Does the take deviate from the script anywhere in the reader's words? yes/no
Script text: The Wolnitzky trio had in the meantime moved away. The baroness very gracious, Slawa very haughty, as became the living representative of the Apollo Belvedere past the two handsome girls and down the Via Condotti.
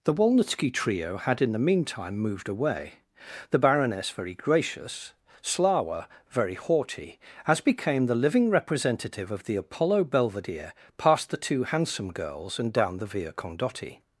no